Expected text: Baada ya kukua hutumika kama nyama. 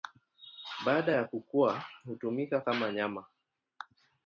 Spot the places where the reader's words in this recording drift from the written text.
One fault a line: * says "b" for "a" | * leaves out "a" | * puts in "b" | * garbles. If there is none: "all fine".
all fine